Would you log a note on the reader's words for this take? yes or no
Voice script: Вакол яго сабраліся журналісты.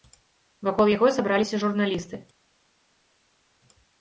no